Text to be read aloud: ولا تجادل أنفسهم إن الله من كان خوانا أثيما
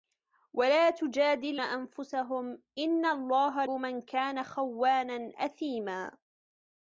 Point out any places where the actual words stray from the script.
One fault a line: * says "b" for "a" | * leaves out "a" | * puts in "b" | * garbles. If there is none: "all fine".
all fine